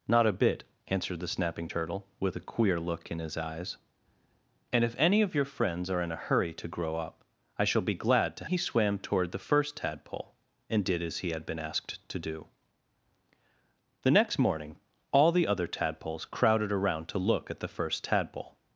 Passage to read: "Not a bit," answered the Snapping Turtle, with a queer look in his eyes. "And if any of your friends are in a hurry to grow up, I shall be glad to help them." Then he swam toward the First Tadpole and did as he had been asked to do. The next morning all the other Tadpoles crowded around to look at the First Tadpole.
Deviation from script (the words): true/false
true